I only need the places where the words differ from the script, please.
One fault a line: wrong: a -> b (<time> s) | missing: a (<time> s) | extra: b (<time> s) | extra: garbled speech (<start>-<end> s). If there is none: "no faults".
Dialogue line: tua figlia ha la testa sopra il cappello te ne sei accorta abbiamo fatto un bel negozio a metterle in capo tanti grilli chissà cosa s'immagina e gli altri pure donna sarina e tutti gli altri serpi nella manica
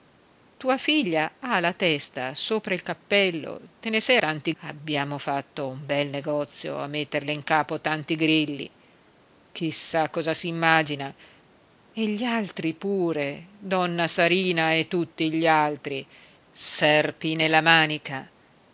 wrong: accorta -> tanti (4.2 s)